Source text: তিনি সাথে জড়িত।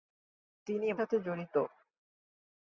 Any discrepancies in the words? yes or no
no